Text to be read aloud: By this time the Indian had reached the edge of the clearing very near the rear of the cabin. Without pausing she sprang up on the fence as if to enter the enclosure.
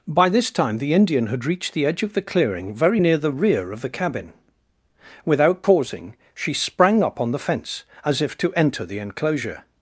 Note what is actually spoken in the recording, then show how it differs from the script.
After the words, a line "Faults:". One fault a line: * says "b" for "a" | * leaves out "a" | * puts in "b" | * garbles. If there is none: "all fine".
By this time the Indian had reached the edge of the clearing very near the rear of the cabin. Without pausing she sprang up on the fence as if to enter the enclosure.
Faults:
all fine